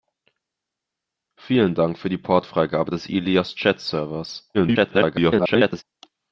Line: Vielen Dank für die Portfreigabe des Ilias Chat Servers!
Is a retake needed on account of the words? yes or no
yes